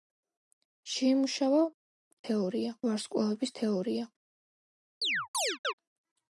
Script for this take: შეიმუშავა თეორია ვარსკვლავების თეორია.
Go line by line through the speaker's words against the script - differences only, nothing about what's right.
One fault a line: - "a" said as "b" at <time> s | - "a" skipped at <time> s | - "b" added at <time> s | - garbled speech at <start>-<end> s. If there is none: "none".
none